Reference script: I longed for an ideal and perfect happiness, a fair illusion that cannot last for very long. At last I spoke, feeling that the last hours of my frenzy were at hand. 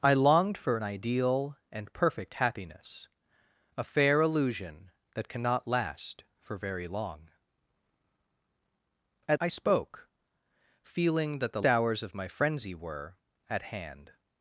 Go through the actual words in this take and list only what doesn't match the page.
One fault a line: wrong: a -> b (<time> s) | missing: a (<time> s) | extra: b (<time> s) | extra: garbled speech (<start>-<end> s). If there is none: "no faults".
missing: last (9.4 s)
missing: last (11.6 s)